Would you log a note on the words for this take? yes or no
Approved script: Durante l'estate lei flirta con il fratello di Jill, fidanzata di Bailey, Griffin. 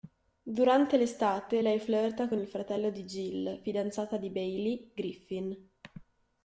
no